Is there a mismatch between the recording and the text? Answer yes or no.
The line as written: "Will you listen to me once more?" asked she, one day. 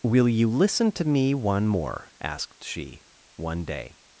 yes